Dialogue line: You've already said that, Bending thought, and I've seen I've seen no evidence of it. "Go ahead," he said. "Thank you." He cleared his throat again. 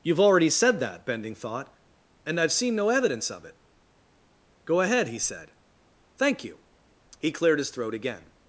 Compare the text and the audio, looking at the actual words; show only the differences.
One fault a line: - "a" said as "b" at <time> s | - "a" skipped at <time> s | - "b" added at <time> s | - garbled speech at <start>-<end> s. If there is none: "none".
- "I've seen" skipped at 2.8 s